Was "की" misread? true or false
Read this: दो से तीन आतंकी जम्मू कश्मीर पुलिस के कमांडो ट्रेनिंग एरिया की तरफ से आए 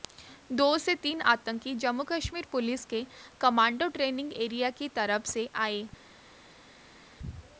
false